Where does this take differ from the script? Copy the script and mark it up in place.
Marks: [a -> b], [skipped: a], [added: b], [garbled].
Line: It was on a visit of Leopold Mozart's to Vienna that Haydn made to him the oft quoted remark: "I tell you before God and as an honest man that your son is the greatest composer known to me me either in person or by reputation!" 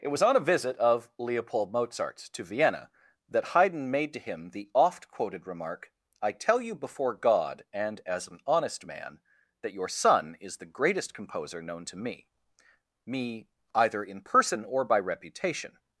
It was on a visit of Leopold Mozart's to Vienna that Haydn made to him the oft quoted remark: "I tell you before God and as an honest man that your son is the greatest composer known to me me either in person or by reputation!"